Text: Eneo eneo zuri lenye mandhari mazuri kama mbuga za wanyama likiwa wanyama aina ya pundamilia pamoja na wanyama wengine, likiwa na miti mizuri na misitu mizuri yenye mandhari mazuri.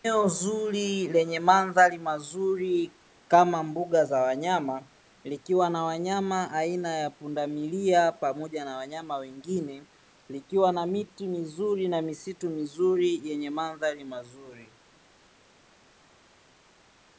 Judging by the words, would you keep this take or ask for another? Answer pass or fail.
fail